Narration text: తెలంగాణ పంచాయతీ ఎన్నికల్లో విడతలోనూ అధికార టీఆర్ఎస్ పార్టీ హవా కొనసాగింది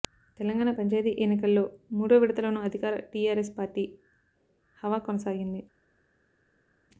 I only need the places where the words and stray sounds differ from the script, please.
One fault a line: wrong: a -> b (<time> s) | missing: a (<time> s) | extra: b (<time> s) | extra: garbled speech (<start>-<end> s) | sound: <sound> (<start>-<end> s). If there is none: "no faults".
extra: మూడో (1.9 s)